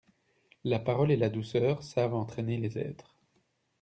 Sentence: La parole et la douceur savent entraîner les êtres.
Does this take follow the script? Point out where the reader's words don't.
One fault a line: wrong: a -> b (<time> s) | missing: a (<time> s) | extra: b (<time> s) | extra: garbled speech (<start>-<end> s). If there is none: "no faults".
no faults